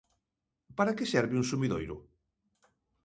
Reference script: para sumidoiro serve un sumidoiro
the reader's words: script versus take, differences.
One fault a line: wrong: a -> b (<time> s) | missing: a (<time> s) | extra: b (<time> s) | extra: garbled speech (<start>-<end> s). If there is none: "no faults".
wrong: sumidoiro -> que (1.0 s)